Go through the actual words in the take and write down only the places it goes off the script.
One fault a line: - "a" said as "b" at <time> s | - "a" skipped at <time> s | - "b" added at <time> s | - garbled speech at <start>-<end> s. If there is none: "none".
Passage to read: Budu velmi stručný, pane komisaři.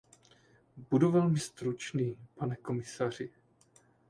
none